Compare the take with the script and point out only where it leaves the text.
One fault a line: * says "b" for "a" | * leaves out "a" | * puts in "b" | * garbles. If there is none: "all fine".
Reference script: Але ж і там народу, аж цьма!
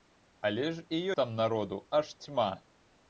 all fine